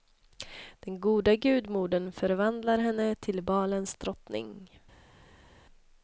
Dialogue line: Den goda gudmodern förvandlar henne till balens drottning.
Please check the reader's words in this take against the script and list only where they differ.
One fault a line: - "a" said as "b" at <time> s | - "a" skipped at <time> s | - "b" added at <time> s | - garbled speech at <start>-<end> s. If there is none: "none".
none